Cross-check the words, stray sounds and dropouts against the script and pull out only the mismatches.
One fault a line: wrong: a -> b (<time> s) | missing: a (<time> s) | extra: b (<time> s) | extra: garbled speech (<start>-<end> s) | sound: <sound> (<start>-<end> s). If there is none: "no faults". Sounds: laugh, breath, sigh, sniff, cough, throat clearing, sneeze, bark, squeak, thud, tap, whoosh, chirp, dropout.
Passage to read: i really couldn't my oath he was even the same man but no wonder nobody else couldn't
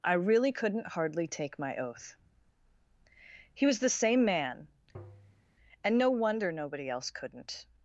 extra: hardly take (0.9 s)
missing: even (3.8 s)
sound: tap (4.9-5.5 s)
wrong: but -> and (5.8 s)